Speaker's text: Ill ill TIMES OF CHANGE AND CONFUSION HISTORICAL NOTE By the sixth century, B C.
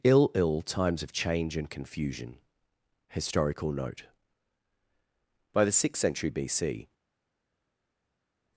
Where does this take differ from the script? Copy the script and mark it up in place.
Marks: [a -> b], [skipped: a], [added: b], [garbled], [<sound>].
Ill ill TIMES OF CHANGE AND CONFUSION HISTORICAL NOTE By the sixth century, B C.